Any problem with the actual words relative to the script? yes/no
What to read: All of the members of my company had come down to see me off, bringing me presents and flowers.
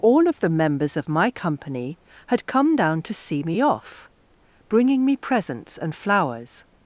no